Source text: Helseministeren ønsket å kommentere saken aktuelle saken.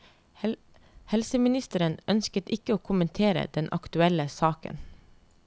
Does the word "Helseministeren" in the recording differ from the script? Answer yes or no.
no